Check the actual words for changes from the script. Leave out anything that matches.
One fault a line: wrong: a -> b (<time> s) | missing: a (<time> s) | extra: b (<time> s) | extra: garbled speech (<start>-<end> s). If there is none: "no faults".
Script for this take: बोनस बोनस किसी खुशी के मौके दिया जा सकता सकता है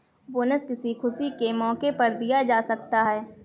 missing: बोनस (0.6 s)
extra: पर (1.9 s)
missing: सकता (3.0 s)